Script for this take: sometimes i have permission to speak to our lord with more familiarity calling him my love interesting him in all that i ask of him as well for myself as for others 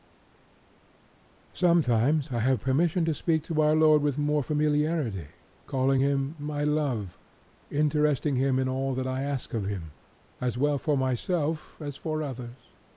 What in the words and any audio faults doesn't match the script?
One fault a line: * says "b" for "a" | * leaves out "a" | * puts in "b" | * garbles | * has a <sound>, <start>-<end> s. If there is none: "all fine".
all fine